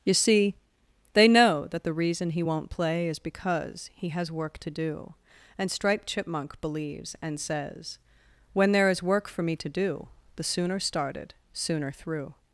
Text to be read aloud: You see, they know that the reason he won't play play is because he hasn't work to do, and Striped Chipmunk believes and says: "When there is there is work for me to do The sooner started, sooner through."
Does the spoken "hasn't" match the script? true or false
false